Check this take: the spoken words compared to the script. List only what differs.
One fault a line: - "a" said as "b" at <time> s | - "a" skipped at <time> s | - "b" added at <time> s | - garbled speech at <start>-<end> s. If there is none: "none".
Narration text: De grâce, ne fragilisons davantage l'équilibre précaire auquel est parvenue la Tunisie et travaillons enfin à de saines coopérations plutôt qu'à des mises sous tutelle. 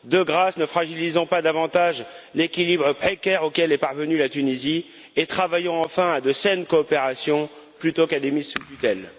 - "pas" added at 1.3 s